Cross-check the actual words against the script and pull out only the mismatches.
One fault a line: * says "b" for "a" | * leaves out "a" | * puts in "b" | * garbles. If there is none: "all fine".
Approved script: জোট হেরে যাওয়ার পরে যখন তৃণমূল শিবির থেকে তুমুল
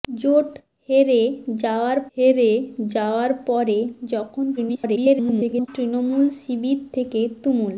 * puts in "হেরে যাওয়ার"
* garbles